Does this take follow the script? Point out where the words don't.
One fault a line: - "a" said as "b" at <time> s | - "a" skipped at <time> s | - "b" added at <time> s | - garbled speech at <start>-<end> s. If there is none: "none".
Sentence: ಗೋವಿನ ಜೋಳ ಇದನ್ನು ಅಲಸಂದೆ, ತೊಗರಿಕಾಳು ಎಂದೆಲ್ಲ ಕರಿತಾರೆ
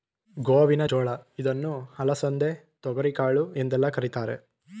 none